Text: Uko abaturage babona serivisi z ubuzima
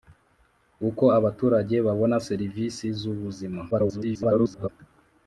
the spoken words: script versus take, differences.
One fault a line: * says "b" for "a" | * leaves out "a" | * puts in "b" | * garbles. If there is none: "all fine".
* garbles